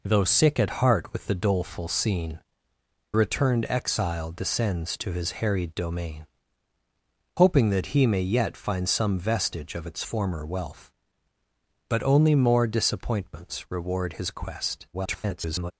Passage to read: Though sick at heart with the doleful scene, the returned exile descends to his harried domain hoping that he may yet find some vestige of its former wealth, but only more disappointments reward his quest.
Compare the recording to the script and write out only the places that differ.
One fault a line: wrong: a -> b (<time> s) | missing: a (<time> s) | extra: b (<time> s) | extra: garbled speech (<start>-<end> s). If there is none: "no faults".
missing: the (2.4 s)
extra: garbled speech (14.9-15.7 s)